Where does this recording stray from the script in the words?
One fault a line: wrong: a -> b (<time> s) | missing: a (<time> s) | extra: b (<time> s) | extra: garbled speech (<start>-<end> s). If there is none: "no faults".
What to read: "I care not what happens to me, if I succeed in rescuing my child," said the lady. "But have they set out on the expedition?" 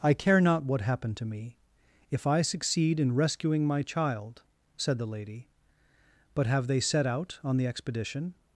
wrong: happens -> happen (0.8 s)